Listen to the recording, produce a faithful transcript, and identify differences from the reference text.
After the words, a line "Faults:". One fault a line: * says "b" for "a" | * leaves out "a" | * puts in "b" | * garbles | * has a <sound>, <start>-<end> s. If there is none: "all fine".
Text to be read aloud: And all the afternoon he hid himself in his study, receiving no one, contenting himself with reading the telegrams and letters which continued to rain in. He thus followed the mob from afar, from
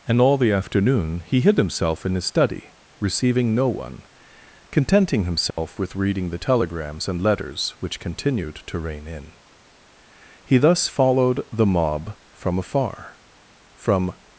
And all the afternoon he hid himself in his study, receiving no one, contenting himself with reading the telegrams and letters which continued to rain in. He thus followed the mob from afar, from
Faults:
* has a dropout, 5.5-5.6 s